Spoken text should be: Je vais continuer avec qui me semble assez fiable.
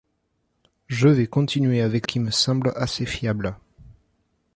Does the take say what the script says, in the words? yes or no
yes